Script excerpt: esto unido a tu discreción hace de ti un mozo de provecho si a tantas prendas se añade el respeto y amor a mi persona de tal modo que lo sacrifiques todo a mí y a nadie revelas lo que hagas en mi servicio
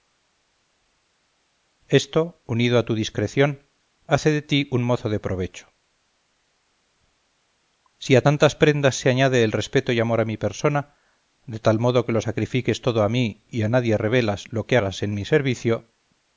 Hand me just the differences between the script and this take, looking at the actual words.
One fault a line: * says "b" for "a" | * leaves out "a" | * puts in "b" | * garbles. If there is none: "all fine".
all fine